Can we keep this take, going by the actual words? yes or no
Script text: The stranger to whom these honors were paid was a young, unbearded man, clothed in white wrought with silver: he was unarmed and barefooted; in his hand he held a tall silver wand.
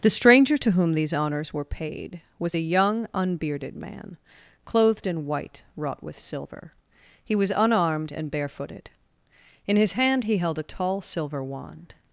yes